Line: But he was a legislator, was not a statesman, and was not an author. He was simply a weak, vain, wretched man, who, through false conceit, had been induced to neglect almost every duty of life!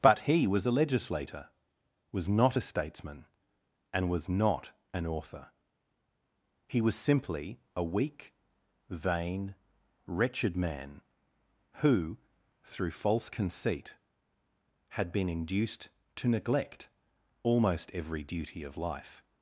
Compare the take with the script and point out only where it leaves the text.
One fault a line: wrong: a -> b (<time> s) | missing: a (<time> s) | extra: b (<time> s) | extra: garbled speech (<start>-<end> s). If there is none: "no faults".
no faults